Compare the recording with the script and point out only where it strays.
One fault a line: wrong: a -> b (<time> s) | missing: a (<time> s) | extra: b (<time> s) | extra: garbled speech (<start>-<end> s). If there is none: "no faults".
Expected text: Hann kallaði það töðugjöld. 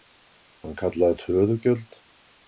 missing: það (1.2 s)